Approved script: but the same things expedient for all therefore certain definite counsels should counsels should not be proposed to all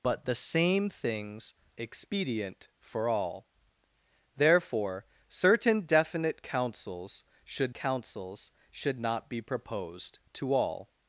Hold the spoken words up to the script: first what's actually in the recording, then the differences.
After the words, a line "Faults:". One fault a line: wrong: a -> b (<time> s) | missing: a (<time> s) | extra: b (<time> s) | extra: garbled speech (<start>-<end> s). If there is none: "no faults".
but the same things expedient for all therefore certain definite counsels should counsels should not be proposed to all
Faults:
no faults